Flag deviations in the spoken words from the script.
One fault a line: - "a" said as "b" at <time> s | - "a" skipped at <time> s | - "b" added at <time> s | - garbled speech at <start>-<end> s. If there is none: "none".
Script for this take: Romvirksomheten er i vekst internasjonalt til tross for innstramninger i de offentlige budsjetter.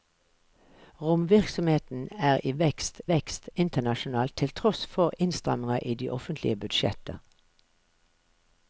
- "vekst" added at 3.1 s